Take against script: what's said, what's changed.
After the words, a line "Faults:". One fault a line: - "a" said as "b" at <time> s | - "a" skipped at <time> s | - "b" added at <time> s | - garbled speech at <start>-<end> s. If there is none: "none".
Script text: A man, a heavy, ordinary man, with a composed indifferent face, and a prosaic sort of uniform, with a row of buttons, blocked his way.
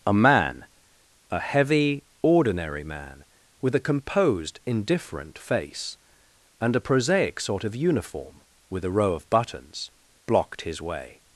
A man, a heavy, ordinary man, with a composed indifferent face, and a prosaic sort of uniform, with a row of buttons, blocked his way.
Faults:
none